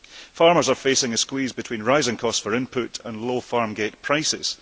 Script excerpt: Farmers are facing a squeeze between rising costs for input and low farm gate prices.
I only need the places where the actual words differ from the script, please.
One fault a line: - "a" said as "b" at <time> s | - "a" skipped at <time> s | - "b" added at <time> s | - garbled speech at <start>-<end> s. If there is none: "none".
none